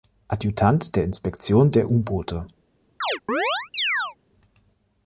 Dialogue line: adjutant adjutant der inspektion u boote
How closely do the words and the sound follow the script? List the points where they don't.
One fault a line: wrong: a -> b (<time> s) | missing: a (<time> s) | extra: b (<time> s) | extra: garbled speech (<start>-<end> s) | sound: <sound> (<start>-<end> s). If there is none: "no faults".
missing: adjutant (0.9 s)
extra: der (1.7 s)
sound: chirp (3.0-4.2 s)